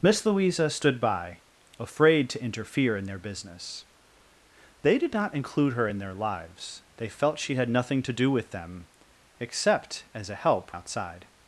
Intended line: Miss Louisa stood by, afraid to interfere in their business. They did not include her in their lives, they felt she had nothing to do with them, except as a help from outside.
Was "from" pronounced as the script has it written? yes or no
no